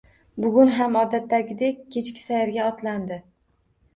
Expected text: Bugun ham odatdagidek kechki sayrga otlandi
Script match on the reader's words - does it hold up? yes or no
yes